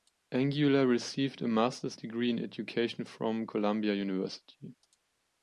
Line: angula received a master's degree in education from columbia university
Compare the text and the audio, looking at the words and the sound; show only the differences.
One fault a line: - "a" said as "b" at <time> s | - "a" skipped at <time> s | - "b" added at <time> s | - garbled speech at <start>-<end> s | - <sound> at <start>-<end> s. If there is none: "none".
none